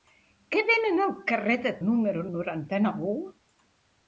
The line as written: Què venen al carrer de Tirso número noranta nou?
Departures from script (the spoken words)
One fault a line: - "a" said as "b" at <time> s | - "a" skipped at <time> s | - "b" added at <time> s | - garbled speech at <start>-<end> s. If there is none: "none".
- "Tirso" skipped at 1.7 s